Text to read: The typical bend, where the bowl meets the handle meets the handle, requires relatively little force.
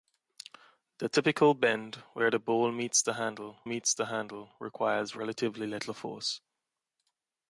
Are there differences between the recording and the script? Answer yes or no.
no